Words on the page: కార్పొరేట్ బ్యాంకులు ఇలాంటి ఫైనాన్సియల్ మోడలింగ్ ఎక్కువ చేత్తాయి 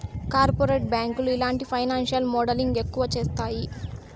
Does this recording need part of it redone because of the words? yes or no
no